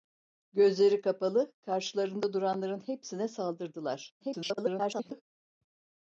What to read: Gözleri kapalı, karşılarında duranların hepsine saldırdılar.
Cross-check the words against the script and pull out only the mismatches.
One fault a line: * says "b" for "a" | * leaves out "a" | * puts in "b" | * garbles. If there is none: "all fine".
* garbles